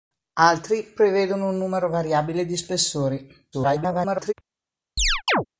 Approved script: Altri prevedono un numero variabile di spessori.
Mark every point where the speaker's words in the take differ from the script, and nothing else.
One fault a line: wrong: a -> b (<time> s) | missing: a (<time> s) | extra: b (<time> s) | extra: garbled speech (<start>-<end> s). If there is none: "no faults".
extra: garbled speech (3.5-4.3 s)